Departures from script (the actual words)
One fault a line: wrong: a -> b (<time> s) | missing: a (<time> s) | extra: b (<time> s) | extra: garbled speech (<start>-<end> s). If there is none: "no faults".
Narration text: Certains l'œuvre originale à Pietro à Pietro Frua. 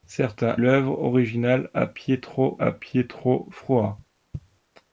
no faults